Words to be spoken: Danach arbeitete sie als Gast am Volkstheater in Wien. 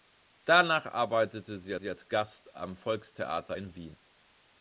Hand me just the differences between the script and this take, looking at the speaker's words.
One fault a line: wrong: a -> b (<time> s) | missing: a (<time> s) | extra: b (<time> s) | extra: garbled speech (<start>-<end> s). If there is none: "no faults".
extra: sie (1.7 s)